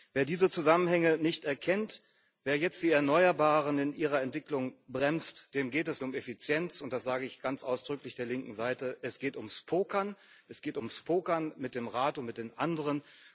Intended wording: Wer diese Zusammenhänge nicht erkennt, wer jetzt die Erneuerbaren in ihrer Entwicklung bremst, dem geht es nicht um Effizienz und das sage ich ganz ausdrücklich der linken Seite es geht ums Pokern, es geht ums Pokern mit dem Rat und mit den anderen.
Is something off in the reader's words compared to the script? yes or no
yes